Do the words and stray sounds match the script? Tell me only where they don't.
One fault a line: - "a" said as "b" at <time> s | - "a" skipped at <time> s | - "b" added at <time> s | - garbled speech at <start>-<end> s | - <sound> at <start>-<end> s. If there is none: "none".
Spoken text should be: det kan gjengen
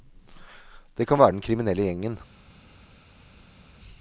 - "være den kriminelle" added at 1.2 s